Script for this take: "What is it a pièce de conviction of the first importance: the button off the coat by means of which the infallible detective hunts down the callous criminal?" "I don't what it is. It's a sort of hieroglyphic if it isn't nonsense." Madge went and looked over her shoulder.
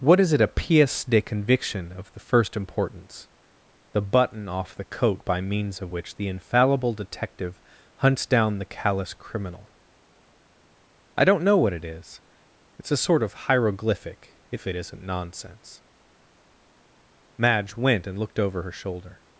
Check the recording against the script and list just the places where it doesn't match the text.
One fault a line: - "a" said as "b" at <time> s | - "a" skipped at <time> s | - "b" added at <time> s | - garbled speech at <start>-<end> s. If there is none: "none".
- "know" added at 11.4 s